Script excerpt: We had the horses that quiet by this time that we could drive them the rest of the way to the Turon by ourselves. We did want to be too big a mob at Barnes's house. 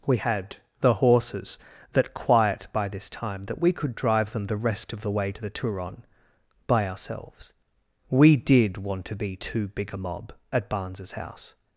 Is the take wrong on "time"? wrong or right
right